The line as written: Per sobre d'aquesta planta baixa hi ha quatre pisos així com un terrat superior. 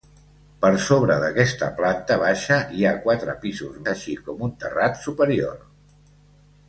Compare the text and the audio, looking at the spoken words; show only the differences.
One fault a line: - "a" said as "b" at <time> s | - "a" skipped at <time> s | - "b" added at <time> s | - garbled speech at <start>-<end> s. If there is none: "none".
none